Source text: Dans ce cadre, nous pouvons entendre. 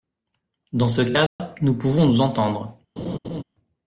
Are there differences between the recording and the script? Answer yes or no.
yes